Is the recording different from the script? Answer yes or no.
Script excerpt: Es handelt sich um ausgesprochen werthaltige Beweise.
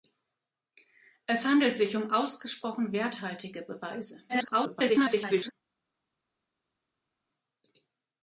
yes